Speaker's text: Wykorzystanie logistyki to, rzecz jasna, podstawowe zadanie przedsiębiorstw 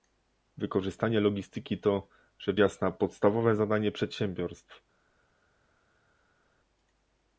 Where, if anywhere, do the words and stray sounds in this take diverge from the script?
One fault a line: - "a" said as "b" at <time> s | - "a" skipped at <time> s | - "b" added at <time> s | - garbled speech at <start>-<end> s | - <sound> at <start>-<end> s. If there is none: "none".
none